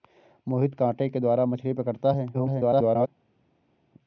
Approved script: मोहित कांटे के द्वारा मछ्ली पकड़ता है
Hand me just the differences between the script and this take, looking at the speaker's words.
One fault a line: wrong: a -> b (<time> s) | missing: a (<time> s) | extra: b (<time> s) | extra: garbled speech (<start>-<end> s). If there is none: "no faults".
extra: garbled speech (2.3-3.1 s)